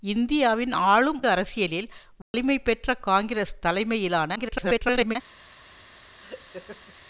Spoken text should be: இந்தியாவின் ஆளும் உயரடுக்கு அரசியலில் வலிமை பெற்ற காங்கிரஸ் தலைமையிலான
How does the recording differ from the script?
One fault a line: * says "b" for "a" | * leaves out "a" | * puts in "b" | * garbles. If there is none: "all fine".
* leaves out "உயரடுக்கு"
* garbles